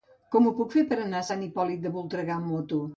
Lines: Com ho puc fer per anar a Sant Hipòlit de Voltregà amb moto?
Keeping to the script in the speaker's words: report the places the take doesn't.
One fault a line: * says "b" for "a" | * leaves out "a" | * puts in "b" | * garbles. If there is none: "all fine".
all fine